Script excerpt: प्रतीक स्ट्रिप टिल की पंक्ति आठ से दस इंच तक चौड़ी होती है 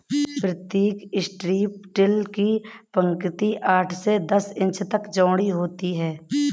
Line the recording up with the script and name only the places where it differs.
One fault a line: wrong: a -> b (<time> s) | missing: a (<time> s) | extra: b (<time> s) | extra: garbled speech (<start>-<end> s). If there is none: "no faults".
no faults